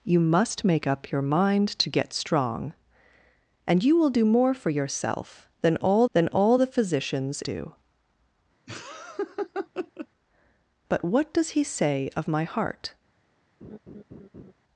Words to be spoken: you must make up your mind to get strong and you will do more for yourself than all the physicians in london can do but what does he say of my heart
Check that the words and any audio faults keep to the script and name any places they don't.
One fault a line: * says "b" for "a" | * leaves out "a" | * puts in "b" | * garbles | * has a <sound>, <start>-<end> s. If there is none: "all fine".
* puts in "than all"
* leaves out "in london can"
* has a laugh, 8.7-10.1 s
* has a laugh, 13.6-14.5 s